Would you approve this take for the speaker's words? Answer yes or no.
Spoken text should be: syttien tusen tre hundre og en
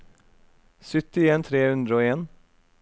no